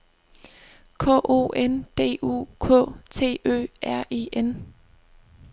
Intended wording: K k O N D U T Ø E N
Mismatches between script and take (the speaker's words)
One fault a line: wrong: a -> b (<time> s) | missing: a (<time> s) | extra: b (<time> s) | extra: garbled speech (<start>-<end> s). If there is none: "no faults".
missing: k (1.2 s)
extra: K (2.6 s)
extra: R (3.8 s)